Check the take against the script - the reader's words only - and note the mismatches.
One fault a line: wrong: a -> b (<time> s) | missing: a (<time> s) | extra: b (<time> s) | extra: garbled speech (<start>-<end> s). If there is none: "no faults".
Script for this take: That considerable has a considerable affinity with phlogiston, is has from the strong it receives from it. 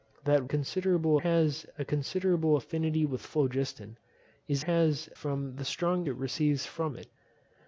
no faults